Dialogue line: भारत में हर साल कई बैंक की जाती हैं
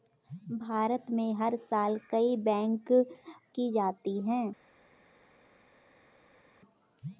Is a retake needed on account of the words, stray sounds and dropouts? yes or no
no